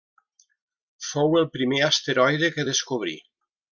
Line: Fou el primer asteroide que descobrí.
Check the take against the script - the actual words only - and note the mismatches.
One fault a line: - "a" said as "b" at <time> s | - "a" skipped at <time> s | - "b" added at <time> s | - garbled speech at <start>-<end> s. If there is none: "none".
none